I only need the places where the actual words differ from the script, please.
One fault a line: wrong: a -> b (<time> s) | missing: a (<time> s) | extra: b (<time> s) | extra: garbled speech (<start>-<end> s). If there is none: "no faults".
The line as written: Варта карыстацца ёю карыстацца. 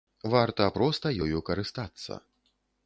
wrong: карыстацца -> проста (0.8 s)